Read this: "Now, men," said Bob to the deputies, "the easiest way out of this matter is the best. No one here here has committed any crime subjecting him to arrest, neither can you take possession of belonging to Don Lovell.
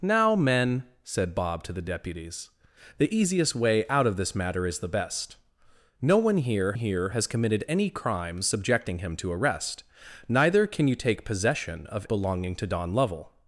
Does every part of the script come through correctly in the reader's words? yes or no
yes